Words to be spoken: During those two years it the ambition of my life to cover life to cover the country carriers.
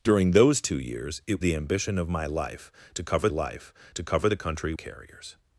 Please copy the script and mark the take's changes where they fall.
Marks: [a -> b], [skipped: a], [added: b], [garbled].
During those two years it the ambition of my life to cover life to cover the country carriers.